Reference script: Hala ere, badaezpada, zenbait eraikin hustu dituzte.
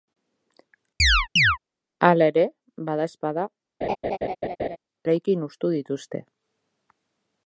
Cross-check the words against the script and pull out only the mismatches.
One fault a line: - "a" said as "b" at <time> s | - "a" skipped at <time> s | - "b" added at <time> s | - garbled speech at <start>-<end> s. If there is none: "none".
- "zenbait" skipped at 3.5 s